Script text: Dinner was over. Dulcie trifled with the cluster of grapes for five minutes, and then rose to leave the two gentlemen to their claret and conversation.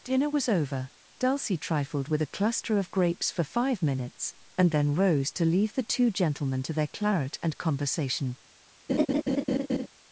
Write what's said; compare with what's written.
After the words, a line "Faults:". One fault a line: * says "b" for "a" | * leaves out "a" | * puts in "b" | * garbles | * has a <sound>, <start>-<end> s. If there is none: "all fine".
Dinner was over. Dulcie trifled with a cluster of grapes for five minutes, and then rose to leave the two gentlemen to their claret and conversation.
Faults:
* says "a" for "the"
* has a laugh, 8.9-9.9 s